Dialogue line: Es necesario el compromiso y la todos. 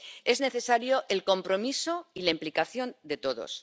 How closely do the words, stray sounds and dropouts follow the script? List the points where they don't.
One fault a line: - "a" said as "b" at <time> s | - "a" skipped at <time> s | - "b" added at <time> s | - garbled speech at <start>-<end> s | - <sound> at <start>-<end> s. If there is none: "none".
- "implicación de" added at 2.3 s